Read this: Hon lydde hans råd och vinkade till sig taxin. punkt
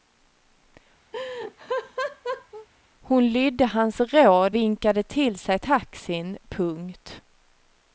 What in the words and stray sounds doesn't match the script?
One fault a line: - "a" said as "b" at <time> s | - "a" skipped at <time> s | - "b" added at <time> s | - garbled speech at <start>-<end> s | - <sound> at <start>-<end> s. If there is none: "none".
- laugh at 1.1-2.7 s
- "och" skipped at 4.6 s